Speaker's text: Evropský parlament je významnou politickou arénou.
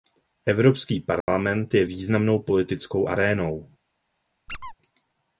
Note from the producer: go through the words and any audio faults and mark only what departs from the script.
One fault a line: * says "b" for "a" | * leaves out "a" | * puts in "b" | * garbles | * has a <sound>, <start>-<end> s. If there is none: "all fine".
* has a dropout, 1.2-1.3 s
* has a squeak, 4.5-4.7 s